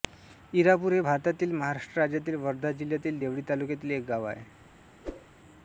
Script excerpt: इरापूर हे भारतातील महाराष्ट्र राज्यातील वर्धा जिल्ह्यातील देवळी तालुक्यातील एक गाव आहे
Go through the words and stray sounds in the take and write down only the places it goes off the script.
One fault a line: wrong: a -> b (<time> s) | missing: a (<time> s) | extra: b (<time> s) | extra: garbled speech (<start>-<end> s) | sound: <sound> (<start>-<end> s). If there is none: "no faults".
sound: whoosh (5.0-5.3 s)